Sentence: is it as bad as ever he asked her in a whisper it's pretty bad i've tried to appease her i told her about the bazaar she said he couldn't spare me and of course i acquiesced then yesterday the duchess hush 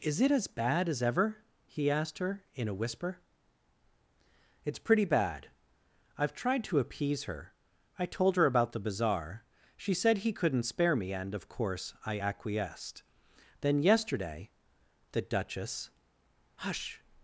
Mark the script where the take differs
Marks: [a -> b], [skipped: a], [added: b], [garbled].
is it as bad as ever he asked her in a whisper it's pretty bad i've tried to appease her i told her about the bazaar she said he couldn't spare me and of course i acquiesced then yesterday the duchess hush